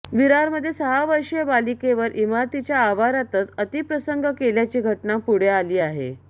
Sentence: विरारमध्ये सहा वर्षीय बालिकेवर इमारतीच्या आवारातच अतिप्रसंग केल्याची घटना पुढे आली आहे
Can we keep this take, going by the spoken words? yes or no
yes